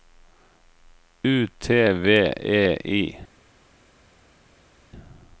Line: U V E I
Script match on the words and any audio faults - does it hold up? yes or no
no